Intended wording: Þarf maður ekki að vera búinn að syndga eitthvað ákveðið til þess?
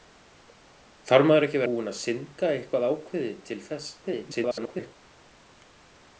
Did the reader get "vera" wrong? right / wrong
wrong